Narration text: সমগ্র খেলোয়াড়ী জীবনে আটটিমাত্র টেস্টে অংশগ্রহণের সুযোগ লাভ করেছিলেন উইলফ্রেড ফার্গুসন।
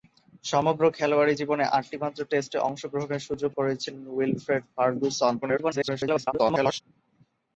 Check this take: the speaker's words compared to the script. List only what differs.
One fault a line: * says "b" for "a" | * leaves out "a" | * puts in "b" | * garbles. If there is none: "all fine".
* leaves out "লাভ"
* garbles